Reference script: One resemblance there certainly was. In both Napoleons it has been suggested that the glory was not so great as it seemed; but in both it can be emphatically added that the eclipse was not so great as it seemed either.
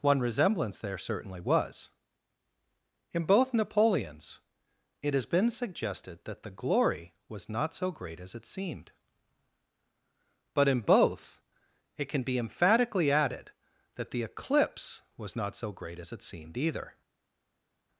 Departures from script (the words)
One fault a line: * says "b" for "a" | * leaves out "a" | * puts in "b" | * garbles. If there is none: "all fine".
all fine